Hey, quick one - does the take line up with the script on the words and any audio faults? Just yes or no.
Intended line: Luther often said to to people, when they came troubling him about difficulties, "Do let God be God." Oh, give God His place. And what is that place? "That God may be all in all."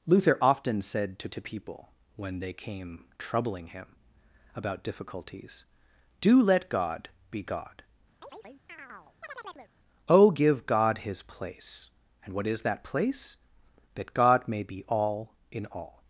no